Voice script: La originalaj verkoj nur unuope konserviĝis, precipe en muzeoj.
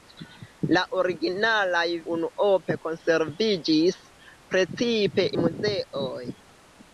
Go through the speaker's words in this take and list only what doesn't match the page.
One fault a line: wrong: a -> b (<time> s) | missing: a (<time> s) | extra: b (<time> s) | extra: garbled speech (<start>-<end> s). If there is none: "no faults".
missing: verkoj nur (1.8 s)
missing: en (5.3 s)